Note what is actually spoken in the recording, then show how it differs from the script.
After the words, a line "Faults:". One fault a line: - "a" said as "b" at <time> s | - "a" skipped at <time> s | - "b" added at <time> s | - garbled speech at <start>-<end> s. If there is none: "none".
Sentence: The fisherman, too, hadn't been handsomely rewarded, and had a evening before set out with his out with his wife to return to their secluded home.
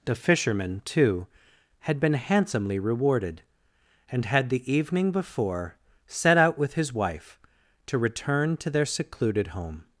The fisherman, too, had been handsomely rewarded, and had the evening before set out with his wife to return to their secluded home.
Faults:
- "hadn't" said as "had" at 1.8 s
- "a" said as "the" at 4.5 s
- "out with his" skipped at 6.9 s